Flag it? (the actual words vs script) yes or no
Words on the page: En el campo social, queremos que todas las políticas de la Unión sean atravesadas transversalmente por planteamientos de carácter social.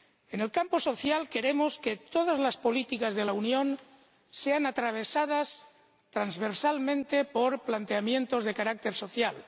no